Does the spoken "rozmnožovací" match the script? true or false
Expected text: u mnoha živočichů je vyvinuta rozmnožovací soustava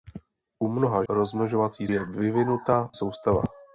false